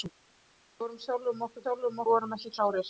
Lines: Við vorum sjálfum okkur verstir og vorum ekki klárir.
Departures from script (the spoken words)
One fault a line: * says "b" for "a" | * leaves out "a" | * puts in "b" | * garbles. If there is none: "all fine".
* says "sjálfum" for "verstir"